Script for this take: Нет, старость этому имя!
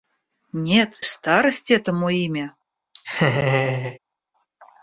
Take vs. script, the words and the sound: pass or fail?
fail